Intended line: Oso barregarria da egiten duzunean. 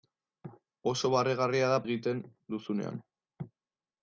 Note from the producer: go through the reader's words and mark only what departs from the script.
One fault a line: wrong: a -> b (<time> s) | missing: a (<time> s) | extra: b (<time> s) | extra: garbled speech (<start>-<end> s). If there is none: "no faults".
no faults